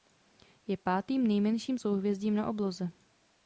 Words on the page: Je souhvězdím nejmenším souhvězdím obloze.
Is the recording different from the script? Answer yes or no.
yes